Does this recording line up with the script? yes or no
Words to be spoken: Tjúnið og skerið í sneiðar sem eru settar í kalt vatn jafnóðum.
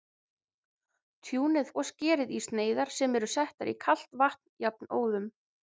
yes